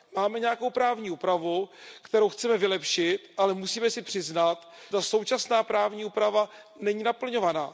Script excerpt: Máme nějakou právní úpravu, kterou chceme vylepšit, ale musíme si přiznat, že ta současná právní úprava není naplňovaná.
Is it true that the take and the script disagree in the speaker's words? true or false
true